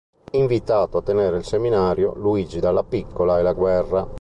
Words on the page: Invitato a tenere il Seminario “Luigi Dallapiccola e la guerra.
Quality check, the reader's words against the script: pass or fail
pass